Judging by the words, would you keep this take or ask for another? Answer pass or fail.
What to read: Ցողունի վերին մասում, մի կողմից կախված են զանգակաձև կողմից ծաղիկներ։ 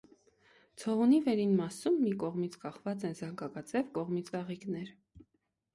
pass